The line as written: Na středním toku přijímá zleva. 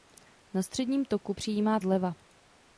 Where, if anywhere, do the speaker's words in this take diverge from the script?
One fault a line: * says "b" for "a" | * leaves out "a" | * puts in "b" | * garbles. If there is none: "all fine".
all fine